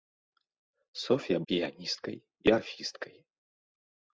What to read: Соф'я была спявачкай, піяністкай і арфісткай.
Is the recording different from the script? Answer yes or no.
yes